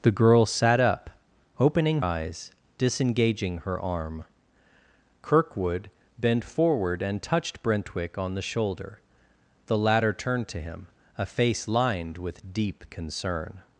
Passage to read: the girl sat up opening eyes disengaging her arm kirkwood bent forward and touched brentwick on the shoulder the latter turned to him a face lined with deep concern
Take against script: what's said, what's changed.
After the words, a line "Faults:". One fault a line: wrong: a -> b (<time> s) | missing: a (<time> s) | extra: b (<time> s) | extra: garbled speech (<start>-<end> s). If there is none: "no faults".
the girl sat up opening eyes disengaging her arm kirkwood bent forward and touched brentwick on the shoulder the latter turned to him a face lined with deep concern
Faults:
no faults